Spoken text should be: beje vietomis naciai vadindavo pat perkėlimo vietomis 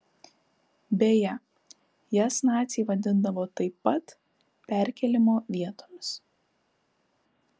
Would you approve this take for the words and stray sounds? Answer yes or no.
no